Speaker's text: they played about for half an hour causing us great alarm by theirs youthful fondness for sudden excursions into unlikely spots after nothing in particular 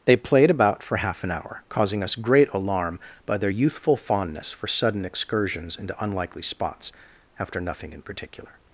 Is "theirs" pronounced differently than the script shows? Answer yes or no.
yes